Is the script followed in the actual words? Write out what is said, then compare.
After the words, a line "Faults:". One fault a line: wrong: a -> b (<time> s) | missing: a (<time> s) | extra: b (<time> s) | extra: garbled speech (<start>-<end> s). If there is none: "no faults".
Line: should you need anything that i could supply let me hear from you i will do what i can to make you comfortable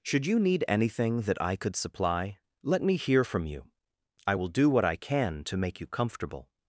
should you need anything that i could supply let me hear from you i will do what i can to make you comfortable
Faults:
no faults